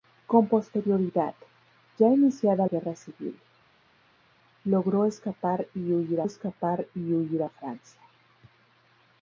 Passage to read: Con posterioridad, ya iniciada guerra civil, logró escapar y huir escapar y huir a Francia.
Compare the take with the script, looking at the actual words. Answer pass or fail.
pass